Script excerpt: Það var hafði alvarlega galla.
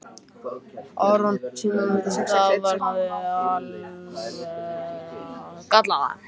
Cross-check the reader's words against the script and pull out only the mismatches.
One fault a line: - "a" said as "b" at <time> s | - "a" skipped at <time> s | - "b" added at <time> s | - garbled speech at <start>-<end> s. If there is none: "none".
none